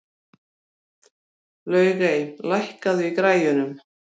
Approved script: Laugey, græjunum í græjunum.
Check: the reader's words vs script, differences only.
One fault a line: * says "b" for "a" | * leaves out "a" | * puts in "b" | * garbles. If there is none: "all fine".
* says "lækkaðu" for "græjunum"